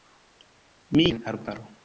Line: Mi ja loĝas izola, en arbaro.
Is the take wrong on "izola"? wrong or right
wrong